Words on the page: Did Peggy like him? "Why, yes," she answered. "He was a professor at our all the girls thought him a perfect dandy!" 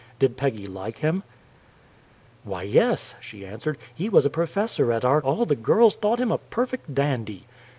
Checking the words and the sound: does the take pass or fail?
pass